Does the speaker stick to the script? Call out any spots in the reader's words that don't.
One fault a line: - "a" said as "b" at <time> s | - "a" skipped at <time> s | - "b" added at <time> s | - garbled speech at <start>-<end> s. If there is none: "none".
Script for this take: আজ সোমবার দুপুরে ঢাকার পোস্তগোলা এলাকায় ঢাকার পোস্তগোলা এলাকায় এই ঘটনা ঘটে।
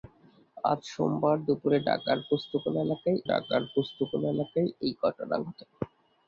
none